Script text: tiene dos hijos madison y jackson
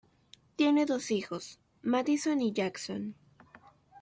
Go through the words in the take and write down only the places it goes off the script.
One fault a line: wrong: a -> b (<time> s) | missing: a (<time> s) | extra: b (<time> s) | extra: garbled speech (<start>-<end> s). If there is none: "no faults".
no faults